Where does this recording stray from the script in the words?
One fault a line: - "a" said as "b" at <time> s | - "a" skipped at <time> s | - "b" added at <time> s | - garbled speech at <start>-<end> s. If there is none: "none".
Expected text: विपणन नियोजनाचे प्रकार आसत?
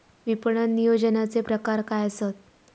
- "काय" added at 1.8 s